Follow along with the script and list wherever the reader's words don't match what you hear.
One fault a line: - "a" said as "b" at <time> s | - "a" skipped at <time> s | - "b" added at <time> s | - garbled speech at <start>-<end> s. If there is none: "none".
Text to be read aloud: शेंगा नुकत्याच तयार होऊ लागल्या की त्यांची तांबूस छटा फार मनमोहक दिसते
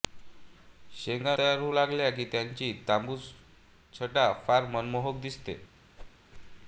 - "नुकत्याच" skipped at 1.4 s